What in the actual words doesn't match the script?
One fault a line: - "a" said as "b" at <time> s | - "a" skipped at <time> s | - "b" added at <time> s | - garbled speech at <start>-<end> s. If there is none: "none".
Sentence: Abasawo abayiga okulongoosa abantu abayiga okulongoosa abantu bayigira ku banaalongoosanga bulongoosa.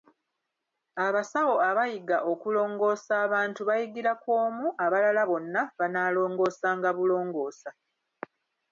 - "abayiga okulongoosa abantu bayigira ku" said as "bayigira ku omu abalala bonna" at 3.7 s